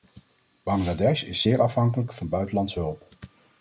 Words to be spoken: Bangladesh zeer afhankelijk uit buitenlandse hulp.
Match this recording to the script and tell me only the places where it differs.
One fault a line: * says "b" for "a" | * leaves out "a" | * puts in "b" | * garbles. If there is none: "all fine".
* puts in "is"
* says "van" for "uit"